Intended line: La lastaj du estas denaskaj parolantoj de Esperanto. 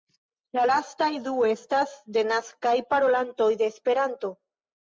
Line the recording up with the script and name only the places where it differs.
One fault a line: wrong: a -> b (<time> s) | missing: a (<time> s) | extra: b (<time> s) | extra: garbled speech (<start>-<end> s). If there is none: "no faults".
no faults